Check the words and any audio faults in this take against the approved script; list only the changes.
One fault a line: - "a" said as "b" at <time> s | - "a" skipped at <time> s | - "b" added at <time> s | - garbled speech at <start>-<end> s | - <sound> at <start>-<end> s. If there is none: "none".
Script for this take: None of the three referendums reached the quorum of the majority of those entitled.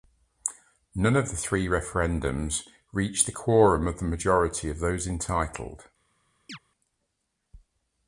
- chirp at 6.5-6.6 s